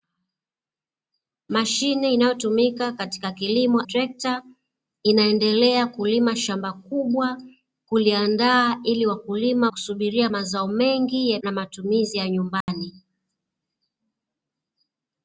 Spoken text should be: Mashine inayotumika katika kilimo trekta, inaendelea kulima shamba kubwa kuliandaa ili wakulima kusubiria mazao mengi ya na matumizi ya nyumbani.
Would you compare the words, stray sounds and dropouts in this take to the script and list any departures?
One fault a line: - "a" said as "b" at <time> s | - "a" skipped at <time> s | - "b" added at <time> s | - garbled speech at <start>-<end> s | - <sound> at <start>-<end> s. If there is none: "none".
- dropout at 12.6-12.7 s